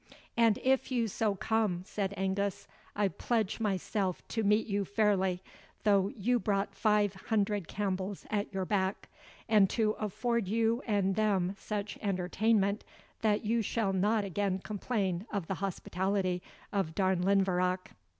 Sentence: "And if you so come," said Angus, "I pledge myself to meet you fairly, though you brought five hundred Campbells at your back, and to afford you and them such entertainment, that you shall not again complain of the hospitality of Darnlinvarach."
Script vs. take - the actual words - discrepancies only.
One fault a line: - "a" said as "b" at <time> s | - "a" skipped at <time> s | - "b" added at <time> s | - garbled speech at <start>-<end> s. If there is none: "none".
none